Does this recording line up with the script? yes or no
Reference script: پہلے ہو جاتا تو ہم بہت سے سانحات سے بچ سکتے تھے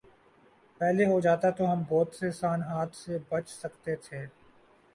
yes